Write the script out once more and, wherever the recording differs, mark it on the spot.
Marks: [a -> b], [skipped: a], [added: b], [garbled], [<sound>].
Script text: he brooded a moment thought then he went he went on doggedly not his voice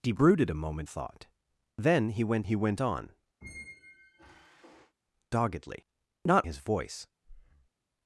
he brooded a moment thought then he went he went on [squeak] doggedly not his voice [breath]